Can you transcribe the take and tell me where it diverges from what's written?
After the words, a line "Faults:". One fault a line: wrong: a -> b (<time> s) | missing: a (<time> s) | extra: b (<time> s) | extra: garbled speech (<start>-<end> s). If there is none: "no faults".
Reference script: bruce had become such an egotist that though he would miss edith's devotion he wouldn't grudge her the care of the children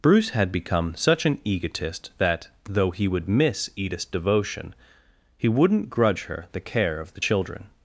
bruce had become such an egotist that though he would miss edith's devotion he wouldn't grudge her the care of the children
Faults:
no faults